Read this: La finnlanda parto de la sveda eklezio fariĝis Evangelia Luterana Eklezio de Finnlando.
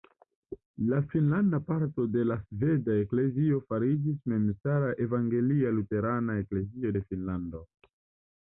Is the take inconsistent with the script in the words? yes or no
yes